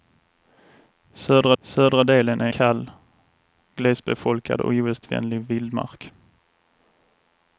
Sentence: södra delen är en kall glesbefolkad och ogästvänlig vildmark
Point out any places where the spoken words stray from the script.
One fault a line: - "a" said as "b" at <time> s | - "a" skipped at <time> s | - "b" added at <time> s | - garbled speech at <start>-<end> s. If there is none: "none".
- "södra" added at 1.6 s
- "en" skipped at 2.5 s